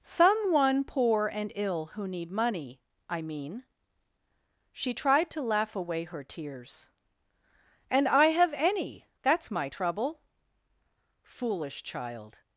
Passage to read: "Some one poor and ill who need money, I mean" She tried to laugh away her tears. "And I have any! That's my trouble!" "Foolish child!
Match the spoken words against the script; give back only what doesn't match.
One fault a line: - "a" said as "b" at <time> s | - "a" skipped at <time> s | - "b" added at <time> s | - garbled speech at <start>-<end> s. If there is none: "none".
none